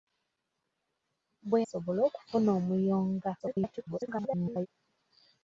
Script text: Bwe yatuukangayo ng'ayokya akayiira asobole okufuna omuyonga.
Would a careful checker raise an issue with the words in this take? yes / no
yes